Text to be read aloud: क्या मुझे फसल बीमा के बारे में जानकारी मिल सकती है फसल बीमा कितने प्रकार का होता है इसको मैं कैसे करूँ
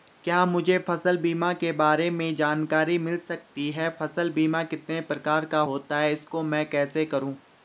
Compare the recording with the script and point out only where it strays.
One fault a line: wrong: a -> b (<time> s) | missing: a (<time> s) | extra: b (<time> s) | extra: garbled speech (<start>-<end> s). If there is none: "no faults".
no faults